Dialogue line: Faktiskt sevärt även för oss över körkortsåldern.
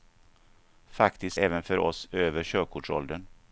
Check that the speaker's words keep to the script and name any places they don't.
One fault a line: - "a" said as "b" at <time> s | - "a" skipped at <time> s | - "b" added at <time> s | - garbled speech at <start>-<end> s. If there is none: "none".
- "sevärt" skipped at 1.4 s